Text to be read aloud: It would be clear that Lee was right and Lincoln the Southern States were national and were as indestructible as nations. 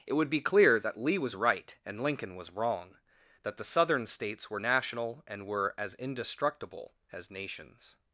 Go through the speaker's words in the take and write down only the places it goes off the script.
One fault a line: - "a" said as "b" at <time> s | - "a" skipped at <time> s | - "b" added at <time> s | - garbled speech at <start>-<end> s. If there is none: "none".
- "was wrong that" added at 2.4 s